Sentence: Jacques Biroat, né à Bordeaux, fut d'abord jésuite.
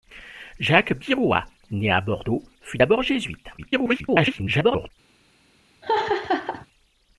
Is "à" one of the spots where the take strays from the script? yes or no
no